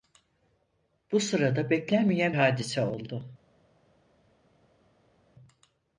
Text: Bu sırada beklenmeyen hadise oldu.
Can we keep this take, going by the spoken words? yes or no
yes